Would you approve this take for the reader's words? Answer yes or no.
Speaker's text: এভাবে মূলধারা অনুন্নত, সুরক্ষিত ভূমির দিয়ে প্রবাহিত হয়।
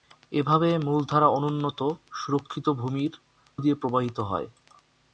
yes